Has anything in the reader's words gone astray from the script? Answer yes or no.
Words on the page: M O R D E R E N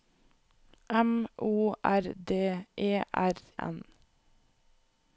yes